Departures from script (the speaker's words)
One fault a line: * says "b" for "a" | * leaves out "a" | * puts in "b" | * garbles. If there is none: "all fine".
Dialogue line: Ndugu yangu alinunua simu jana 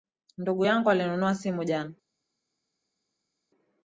all fine